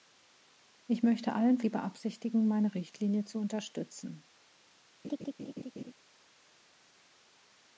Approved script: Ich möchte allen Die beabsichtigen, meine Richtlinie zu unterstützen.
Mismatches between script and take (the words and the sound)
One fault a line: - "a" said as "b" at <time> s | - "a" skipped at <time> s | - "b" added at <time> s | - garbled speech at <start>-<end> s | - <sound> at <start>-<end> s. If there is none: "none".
- laugh at 5.0-5.9 s